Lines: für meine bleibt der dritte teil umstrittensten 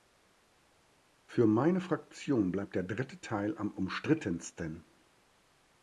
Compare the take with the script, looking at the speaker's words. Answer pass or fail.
fail